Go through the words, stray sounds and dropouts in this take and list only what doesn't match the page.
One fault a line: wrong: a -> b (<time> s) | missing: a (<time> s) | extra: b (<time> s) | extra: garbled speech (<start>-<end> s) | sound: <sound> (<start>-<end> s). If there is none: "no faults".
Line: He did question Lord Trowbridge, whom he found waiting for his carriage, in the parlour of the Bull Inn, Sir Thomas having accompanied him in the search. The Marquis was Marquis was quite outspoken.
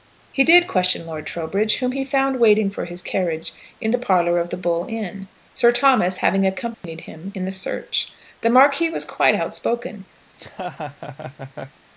sound: dropout (6.7-6.8 s)
missing: Marquis was (9.0 s)
sound: laugh (10.3-11.8 s)